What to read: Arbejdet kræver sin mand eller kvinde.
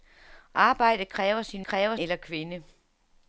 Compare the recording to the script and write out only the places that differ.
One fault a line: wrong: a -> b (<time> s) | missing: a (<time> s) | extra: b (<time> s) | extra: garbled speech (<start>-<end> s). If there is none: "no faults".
wrong: mand -> kræver (1.6 s)